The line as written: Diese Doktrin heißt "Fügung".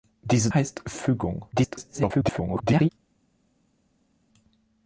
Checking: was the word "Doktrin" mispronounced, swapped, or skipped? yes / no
yes